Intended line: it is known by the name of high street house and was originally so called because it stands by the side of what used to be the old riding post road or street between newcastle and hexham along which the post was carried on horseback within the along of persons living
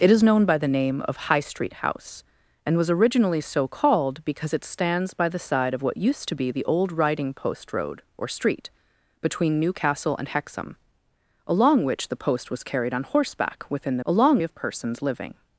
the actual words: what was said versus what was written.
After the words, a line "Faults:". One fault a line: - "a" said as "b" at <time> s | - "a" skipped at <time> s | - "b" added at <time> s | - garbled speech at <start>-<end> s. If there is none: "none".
it is known by the name of high street house and was originally so called because it stands by the side of what used to be the old riding post road or street between newcastle and hexham along which the post was carried on horseback within the along of persons living
Faults:
none